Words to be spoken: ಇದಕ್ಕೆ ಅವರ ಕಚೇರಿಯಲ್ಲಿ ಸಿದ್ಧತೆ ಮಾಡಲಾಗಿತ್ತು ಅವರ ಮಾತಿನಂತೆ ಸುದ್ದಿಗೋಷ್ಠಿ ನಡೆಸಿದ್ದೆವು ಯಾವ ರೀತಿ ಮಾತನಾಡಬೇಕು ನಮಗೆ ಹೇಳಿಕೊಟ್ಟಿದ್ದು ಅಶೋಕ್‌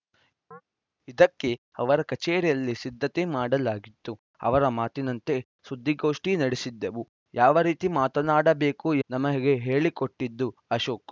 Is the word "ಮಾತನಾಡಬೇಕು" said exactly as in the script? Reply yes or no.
yes